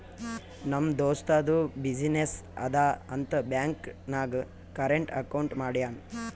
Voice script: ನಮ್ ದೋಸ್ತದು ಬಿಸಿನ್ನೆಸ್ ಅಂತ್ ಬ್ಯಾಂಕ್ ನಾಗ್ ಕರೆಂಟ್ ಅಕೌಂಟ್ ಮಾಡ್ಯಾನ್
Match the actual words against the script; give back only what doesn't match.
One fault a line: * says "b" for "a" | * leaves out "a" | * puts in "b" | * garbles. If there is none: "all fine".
* puts in "ಅದಾ"